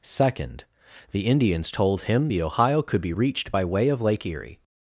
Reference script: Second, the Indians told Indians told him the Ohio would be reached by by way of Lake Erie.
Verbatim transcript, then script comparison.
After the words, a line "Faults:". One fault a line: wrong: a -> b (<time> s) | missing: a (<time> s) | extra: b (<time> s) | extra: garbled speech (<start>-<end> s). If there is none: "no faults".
Second, the Indians told him the Ohio could be reached by way of Lake Erie.
Faults:
missing: Indians told (2.0 s)
wrong: would -> could (2.8 s)
missing: by (3.6 s)